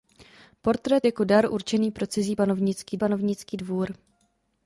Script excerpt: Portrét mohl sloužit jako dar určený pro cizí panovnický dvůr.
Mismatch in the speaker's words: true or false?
true